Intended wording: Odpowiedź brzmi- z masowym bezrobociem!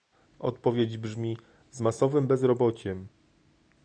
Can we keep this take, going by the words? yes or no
yes